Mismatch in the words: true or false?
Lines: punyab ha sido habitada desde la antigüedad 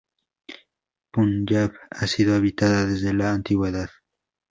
false